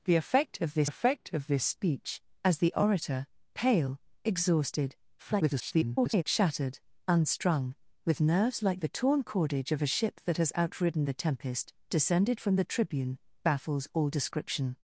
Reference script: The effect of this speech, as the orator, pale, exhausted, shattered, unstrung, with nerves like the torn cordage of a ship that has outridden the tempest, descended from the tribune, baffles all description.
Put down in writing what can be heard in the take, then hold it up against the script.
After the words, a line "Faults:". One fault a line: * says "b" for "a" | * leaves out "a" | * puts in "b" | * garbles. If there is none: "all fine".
The effect of this effect of this speech, as the orator, pale, exhausted, [garbled] shattered, unstrung, with nerves like the torn cordage of a ship that has outridden the tempest, descended from the tribune, baffles all description.
Faults:
* puts in "effect of this"
* garbles